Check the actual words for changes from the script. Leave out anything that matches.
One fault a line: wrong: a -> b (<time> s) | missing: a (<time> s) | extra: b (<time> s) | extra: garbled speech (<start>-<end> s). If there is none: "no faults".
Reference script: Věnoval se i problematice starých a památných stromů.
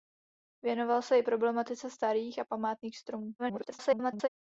extra: garbled speech (3.4-4.3 s)